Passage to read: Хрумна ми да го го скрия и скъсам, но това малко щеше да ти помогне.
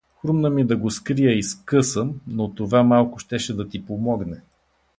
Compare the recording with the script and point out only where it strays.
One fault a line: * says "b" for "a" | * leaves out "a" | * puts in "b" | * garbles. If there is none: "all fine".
* leaves out "го"